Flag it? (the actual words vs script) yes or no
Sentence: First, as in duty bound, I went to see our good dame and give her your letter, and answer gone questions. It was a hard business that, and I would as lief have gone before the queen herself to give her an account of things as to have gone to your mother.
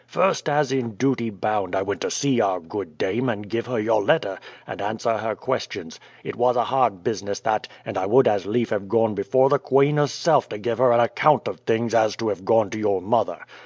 yes